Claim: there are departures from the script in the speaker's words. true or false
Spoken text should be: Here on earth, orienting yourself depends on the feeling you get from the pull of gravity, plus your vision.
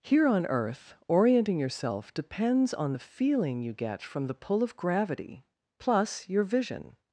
false